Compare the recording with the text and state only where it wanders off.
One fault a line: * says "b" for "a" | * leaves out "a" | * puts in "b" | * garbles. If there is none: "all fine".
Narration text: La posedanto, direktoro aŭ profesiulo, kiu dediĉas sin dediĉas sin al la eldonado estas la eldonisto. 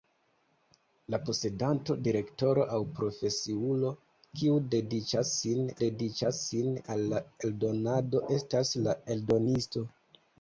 all fine